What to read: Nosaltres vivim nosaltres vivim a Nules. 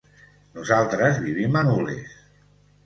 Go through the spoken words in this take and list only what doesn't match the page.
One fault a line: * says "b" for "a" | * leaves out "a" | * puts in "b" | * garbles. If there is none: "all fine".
* leaves out "nosaltres vivim"